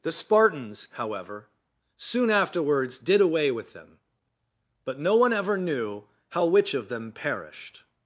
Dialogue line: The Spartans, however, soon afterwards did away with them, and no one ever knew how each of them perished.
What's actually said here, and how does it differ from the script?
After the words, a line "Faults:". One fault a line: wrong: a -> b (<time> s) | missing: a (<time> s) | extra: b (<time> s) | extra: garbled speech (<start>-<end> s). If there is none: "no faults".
The Spartans, however, soon afterwards did away with them, but no one ever knew how which of them perished.
Faults:
wrong: and -> but (4.8 s)
wrong: each -> which (6.5 s)